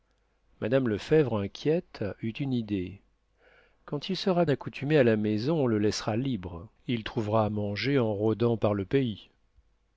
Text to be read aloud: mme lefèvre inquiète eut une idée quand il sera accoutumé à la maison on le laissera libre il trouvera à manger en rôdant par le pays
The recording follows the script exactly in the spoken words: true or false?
true